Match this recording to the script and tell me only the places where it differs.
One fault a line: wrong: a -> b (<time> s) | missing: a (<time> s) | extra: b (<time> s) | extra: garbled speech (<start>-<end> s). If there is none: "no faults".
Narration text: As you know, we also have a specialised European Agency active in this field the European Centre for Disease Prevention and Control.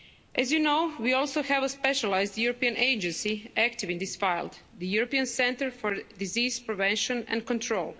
no faults